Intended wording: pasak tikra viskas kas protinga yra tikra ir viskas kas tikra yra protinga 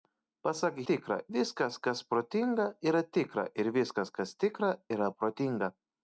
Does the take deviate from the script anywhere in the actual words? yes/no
no